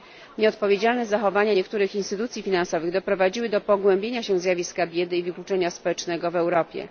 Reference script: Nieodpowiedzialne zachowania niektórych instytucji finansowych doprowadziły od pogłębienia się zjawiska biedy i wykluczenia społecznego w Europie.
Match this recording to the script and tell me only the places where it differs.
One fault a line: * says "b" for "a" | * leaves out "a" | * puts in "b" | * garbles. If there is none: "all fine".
* says "do" for "od"